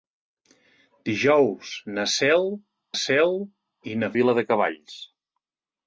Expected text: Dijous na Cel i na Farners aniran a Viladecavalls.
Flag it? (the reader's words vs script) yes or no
yes